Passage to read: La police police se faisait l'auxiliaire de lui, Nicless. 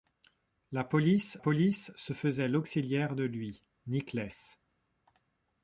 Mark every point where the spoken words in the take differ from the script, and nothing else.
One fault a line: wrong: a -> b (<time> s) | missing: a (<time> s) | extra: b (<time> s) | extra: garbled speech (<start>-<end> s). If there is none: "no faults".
no faults